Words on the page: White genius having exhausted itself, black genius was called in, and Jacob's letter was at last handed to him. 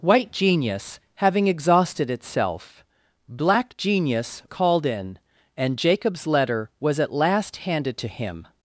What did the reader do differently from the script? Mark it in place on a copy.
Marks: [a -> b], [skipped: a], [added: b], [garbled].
White genius having exhausted itself, black genius [skipped: was] called in, and Jacob's letter was at last handed to him.